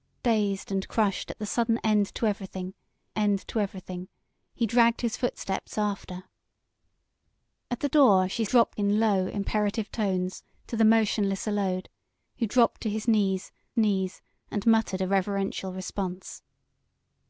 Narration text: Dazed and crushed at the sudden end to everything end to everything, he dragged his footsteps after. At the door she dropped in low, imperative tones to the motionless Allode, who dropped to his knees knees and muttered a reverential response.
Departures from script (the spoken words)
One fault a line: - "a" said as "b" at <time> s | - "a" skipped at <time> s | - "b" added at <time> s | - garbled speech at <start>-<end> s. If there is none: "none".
none